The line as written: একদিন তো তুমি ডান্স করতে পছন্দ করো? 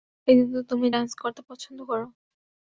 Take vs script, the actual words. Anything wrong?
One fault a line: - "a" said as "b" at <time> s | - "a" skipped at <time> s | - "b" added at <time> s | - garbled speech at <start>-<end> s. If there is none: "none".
none